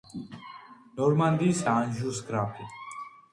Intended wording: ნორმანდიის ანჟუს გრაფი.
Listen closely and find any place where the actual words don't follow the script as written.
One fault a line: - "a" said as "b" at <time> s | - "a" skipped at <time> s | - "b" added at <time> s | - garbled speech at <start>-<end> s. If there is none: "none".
none